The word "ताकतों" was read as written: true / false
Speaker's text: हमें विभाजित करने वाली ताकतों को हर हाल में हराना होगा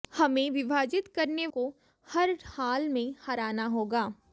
false